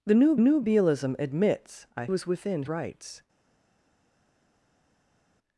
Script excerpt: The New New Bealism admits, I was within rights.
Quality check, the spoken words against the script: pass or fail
pass